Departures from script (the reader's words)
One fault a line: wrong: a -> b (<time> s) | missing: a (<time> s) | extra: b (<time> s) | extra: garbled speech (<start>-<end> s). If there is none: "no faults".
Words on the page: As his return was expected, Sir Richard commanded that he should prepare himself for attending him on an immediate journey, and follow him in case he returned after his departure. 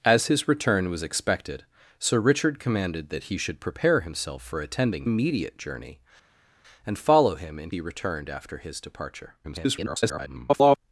missing: him on an (5.1 s)
missing: case (7.7 s)
extra: garbled speech (9.4-10.8 s)